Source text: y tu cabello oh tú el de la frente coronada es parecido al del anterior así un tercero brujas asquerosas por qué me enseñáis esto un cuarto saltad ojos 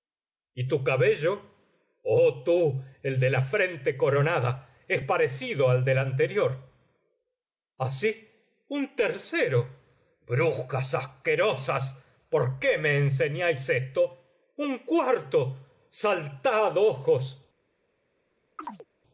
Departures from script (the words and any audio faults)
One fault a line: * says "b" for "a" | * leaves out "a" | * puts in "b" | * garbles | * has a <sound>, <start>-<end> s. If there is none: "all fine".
* has a chirp, 18.6-18.9 s